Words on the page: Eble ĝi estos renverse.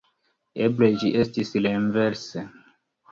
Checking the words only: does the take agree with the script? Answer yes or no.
no